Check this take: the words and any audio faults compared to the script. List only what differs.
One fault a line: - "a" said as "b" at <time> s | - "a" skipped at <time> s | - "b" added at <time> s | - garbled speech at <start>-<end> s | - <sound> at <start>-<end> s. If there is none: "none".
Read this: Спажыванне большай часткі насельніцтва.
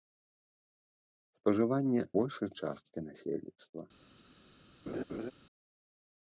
- laugh at 4.9-5.3 s